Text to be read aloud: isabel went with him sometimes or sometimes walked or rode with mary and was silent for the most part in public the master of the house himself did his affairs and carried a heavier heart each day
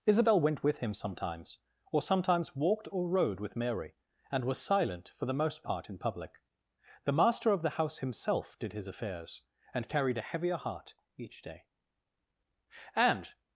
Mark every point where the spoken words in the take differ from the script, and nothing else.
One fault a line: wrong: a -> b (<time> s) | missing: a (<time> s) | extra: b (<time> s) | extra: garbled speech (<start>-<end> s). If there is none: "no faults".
extra: and (12.9 s)